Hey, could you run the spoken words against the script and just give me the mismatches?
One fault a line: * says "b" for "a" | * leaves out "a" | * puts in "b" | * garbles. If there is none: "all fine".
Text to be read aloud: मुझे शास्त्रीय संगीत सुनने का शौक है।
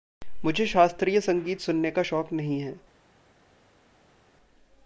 * puts in "नहीं"